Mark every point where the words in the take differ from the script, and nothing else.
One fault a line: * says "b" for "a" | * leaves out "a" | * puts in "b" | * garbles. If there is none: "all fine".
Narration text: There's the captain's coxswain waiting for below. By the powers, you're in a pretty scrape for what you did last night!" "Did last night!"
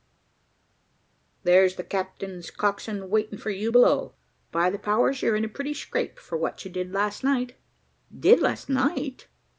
* puts in "you"